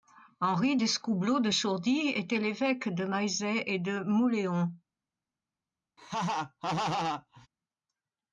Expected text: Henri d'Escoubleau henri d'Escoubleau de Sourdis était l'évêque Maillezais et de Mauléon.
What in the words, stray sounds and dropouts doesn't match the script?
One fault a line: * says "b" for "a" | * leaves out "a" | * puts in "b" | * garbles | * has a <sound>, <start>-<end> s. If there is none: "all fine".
* leaves out "henri d'Escoubleau"
* puts in "de"
* has a laugh, 6.0-7.5 s